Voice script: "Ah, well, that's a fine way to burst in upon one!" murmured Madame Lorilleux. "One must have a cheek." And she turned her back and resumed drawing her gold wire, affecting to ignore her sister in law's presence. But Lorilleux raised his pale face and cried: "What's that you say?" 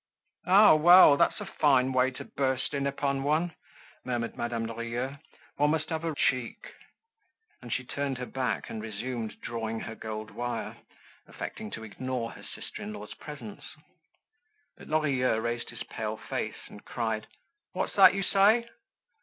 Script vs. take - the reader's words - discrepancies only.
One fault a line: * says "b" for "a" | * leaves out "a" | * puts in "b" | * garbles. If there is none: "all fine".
all fine